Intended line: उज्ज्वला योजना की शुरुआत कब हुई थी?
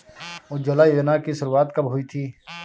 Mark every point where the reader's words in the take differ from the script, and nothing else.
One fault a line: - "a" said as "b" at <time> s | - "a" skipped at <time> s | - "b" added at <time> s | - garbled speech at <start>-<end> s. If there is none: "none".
none